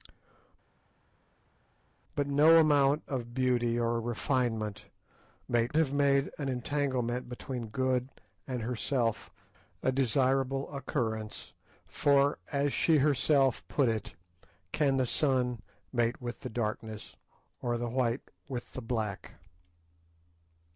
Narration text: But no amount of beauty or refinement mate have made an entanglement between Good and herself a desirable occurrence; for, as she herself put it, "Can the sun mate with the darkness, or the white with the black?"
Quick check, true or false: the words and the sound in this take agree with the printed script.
true